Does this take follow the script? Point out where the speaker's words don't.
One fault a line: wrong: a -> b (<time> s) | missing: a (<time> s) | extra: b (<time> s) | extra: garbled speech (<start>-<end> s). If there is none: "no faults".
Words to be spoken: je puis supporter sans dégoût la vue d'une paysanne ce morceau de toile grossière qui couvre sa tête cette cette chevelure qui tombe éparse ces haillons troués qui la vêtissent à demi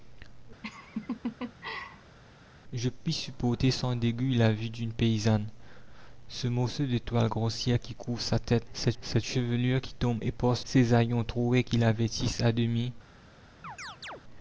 no faults